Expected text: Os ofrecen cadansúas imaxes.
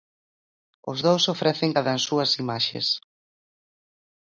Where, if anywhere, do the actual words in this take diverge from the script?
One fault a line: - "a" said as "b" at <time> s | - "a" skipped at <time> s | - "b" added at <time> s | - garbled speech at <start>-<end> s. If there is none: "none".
- "dous" added at 1.1 s